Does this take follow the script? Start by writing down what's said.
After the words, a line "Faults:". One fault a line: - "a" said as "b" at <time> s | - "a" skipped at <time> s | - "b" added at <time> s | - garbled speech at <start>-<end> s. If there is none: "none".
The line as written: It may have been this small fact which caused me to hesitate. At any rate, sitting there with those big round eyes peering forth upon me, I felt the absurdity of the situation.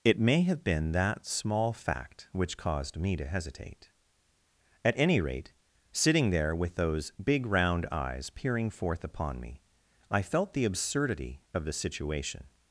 It may have been that small fact which caused me to hesitate. At any rate, sitting there with those big round eyes peering forth upon me, I felt the absurdity of the situation.
Faults:
- "this" said as "that" at 0.9 s